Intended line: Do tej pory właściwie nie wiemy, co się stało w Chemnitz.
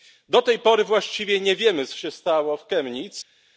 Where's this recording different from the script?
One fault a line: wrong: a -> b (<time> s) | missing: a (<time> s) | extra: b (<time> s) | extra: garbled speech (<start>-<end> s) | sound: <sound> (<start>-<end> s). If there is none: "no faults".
no faults